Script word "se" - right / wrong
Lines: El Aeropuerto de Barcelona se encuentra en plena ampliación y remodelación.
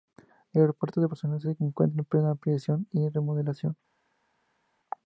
right